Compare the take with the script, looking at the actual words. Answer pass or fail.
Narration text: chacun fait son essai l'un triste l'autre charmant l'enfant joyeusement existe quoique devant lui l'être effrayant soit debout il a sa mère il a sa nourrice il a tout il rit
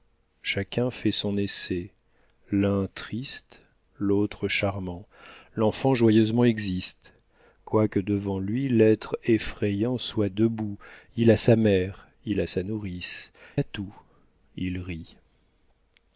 fail